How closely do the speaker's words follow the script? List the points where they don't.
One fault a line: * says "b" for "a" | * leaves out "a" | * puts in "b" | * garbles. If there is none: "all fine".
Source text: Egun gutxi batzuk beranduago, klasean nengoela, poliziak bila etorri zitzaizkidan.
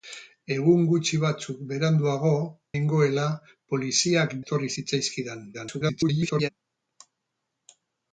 * leaves out "klasean"
* leaves out "bila"
* garbles